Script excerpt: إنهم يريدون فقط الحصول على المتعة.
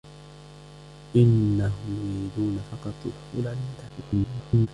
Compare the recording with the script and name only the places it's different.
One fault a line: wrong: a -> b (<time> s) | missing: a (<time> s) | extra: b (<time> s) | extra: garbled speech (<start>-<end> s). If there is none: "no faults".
extra: garbled speech (3.9-4.7 s)